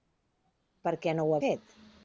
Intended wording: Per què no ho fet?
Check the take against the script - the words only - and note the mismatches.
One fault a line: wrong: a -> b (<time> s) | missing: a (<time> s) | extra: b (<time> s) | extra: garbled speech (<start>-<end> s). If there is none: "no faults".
no faults